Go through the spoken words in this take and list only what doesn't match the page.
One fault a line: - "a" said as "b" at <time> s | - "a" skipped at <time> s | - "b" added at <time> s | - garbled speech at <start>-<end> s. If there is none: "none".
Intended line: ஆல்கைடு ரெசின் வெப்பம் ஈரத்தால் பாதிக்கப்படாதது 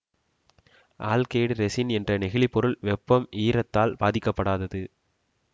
- "என்ற நெகிழி பொருள்" added at 2.0 s